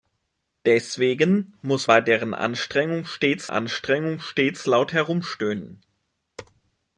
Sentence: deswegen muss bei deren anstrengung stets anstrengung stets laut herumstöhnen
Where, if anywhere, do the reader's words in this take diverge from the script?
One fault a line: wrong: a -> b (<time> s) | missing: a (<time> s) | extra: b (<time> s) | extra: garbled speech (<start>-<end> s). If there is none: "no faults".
no faults